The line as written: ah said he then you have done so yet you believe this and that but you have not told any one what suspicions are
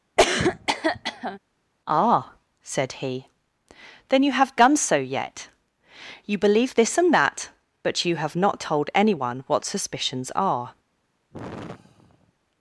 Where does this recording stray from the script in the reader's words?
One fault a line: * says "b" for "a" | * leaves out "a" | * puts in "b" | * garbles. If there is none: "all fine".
all fine